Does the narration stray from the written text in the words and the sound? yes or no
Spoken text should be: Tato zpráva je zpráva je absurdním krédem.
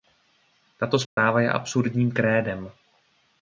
yes